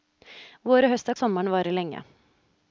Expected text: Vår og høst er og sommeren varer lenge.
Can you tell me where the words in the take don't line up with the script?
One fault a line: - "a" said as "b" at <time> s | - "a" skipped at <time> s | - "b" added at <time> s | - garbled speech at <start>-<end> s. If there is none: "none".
none